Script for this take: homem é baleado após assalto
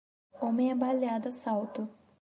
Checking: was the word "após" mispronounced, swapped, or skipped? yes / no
yes